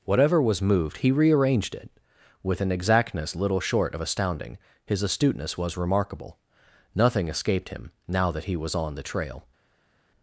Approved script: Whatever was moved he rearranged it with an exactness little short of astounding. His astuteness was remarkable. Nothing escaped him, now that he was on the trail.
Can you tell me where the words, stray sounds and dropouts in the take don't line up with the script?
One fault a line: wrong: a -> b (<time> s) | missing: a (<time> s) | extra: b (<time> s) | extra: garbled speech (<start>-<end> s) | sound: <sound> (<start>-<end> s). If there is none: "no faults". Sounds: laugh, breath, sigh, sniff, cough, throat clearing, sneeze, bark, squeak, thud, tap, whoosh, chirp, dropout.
no faults